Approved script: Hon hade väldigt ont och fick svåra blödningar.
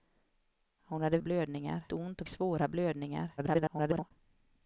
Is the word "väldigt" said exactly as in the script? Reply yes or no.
no